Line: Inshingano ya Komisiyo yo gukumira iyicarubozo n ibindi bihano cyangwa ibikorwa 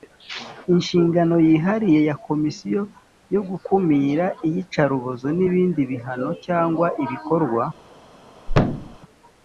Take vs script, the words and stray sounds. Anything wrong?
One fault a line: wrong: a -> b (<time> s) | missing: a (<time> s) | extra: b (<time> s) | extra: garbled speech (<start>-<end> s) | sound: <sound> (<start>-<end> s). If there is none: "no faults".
extra: yihariye (1.5 s)
sound: thud (8.5-9.0 s)